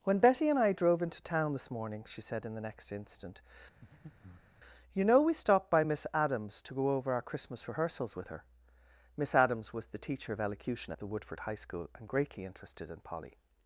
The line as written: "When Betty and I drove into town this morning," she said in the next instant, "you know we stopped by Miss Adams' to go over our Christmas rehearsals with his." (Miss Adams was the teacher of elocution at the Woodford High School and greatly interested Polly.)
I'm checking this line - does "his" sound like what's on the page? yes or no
no